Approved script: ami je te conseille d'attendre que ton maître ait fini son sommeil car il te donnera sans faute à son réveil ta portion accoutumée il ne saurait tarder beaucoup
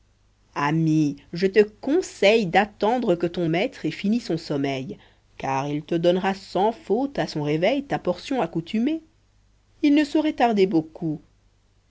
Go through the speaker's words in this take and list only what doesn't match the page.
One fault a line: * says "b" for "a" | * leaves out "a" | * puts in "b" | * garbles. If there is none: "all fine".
all fine